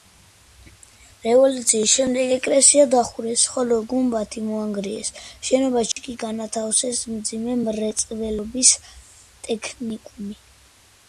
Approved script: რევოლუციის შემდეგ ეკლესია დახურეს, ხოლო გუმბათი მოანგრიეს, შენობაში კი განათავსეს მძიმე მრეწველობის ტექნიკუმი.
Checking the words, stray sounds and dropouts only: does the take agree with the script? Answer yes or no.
no